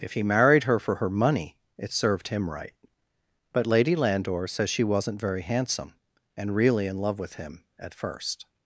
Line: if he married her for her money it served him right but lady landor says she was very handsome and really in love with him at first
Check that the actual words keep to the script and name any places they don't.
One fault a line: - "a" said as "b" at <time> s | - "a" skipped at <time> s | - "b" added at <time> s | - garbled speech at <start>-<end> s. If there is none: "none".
- "was" said as "wasn't" at 4.8 s